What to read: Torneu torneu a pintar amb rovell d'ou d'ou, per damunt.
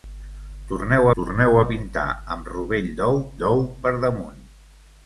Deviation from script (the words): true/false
false